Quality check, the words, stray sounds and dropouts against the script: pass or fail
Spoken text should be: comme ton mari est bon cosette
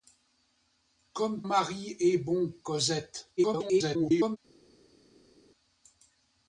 fail